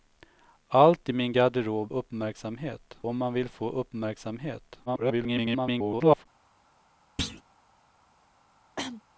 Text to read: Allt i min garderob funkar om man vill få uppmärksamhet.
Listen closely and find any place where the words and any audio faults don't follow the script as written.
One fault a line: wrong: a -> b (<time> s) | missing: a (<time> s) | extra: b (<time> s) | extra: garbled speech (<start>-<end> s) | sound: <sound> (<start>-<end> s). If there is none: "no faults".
wrong: funkar -> uppmärksamhet (1.9 s)
extra: garbled speech (4.9-6.3 s)
sound: thud (7.2-7.4 s)
sound: cough (8.8-9.0 s)